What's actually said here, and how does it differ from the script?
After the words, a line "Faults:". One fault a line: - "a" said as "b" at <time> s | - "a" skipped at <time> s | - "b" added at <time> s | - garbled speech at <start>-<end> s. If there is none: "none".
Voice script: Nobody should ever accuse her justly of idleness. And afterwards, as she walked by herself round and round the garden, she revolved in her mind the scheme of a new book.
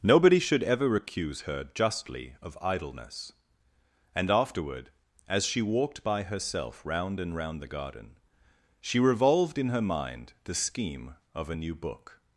Nobody should ever accuse her justly of idleness. And afterward, as she walked by herself round and round the garden, she revolved in her mind the scheme of a new book.
Faults:
- "afterwards" said as "afterward" at 4.3 s